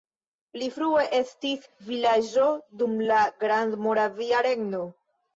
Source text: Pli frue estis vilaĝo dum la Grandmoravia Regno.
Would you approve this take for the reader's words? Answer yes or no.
yes